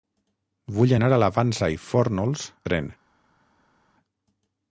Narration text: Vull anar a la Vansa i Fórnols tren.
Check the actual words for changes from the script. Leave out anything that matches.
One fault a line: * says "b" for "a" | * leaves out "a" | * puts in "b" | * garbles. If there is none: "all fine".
all fine